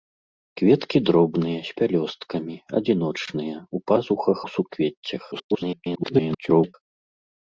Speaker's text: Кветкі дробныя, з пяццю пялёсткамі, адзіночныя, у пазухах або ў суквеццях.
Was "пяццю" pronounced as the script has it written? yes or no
no